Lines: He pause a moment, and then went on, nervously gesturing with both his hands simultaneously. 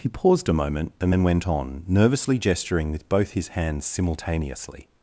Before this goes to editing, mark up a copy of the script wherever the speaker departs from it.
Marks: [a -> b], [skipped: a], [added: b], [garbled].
He [pause -> paused] a moment, and then went on, nervously gesturing with both his hands simultaneously.